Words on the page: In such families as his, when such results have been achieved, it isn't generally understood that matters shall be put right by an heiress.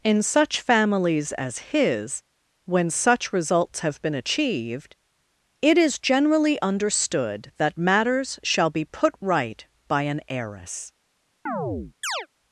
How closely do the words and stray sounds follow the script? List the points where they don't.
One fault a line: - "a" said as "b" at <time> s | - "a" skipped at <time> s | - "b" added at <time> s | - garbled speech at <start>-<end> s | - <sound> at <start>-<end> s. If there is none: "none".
- "isn't" said as "is" at 5.8 s
- chirp at 11.5-12.3 s